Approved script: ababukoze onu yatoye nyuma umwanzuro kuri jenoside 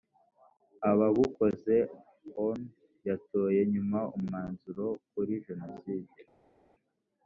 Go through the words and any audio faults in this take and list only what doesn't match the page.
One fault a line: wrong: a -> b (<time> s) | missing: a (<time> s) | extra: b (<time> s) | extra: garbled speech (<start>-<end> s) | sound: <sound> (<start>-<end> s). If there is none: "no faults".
no faults